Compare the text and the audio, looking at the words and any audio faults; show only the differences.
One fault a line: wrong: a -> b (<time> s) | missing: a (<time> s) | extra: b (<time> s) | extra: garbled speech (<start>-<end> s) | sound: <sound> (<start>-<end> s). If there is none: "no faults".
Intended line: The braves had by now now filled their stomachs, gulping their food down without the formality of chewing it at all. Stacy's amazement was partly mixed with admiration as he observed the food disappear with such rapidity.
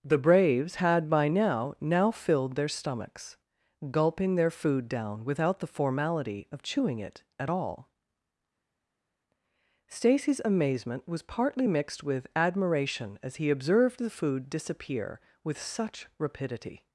no faults